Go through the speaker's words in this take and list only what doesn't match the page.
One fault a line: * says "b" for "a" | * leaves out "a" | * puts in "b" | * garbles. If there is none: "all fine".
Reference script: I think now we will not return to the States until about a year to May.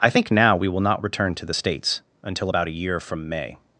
* says "from" for "to"